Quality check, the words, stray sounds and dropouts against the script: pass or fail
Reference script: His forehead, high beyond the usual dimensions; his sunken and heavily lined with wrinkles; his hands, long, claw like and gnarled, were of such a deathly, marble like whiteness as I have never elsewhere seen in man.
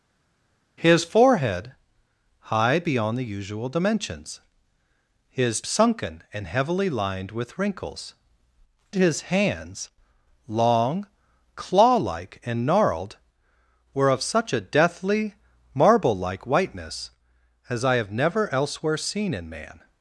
pass